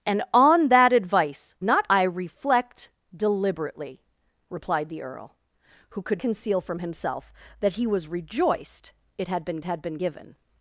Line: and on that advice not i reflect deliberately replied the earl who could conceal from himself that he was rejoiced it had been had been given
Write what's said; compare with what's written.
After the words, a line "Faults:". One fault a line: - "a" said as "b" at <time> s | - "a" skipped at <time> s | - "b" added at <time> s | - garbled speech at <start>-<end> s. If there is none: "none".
and on that advice not i reflect deliberately replied the earl who could conceal from himself that he was rejoiced it had been had been given
Faults:
none